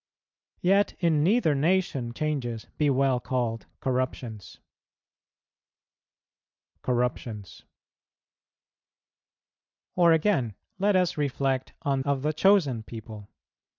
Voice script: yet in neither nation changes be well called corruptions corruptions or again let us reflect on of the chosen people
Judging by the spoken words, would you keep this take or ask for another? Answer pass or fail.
pass